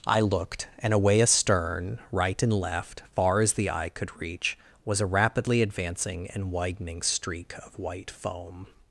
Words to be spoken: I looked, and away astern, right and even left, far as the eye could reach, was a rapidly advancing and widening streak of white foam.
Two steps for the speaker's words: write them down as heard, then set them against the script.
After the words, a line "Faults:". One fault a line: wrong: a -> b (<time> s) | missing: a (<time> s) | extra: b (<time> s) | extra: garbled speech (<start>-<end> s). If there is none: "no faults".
I looked, and away astern, right and left, far as the eye could reach, was a rapidly advancing and widening streak of white foam.
Faults:
missing: even (2.5 s)